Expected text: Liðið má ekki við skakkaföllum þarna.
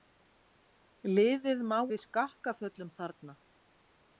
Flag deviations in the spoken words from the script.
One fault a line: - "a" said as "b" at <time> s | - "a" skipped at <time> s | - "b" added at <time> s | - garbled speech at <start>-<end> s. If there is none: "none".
- "ekki" skipped at 1.8 s